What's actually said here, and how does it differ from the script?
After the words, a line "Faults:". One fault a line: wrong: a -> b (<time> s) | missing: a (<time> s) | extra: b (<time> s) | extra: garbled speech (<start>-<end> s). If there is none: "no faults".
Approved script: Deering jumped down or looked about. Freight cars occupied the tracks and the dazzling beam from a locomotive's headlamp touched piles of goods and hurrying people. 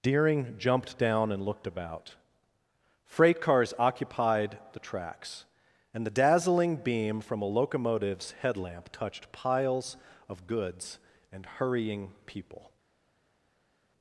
Deering jumped down and looked about. Freight cars occupied the tracks and the dazzling beam from a locomotive's headlamp touched piles of goods and hurrying people.
Faults:
wrong: or -> and (1.3 s)